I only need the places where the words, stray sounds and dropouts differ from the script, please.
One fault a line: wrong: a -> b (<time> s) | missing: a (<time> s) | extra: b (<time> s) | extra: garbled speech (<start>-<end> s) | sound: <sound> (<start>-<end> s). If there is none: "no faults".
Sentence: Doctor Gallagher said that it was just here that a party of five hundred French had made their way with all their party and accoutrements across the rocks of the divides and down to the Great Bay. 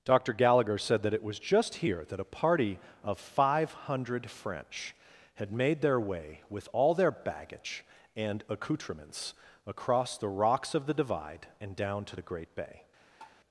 wrong: party -> baggage (7.1 s)
wrong: divides -> divide (10.9 s)
sound: tap (13.2-13.4 s)